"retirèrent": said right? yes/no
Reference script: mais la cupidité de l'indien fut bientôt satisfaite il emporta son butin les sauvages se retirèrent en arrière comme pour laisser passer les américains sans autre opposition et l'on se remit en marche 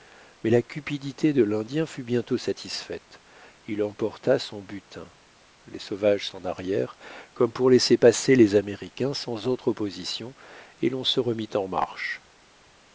no